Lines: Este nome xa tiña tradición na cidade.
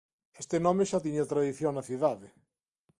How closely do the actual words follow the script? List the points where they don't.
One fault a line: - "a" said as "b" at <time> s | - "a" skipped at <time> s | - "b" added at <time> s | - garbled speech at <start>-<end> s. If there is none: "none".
none